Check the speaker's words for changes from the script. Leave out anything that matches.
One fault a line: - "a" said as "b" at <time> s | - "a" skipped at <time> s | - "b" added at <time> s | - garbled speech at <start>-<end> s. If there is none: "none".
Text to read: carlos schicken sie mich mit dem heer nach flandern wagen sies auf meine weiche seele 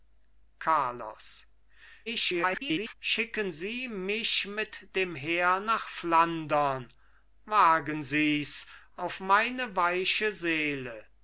- garbled speech at 2.1-2.9 s